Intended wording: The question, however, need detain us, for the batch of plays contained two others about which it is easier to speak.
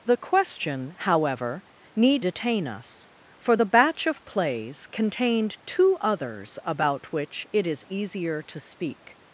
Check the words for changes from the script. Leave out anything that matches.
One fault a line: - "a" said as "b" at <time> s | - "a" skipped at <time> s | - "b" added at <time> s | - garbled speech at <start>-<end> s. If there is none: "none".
none